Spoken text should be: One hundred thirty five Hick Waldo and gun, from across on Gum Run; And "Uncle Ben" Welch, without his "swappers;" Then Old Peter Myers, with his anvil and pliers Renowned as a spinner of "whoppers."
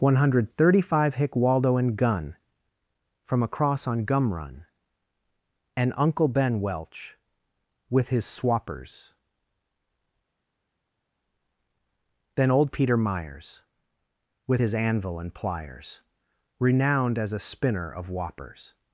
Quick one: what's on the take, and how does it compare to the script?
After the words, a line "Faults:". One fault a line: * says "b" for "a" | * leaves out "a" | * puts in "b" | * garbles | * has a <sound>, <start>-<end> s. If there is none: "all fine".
One hundred thirty five Hick Waldo and gun, from across on Gum Run; And "Uncle Ben" Welch, with his "swappers;" Then Old Peter Myers, with his anvil and pliers Renowned as a spinner of "whoppers."
Faults:
* says "with" for "without"